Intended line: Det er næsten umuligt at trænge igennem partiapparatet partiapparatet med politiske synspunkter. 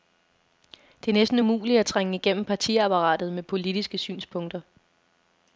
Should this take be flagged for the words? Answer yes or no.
yes